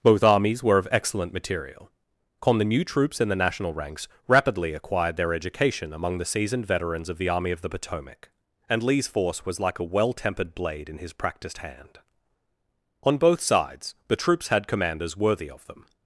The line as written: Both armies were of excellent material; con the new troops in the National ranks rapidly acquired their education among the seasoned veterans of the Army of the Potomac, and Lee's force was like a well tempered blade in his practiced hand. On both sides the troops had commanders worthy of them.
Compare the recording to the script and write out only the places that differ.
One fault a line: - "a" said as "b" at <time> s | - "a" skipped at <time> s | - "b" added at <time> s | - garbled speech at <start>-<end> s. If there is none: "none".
none